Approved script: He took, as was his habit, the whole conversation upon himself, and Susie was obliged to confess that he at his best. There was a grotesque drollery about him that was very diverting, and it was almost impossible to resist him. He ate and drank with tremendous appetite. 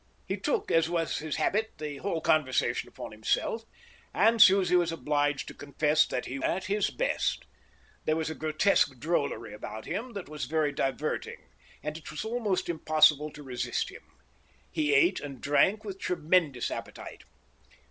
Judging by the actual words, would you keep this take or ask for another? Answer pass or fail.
pass